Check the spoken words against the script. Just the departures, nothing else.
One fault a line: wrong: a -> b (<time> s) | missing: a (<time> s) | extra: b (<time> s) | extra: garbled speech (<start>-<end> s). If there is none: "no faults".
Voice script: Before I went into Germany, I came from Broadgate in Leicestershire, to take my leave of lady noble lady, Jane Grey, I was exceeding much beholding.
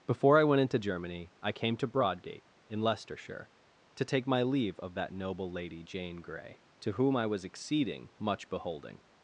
wrong: from -> to (1.8 s)
wrong: lady -> that (5.0 s)
extra: to whom (6.8 s)